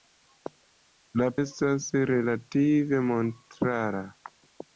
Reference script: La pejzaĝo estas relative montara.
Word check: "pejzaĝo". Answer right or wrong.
wrong